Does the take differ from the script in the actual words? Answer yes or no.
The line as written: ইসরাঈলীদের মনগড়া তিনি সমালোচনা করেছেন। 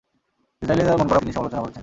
no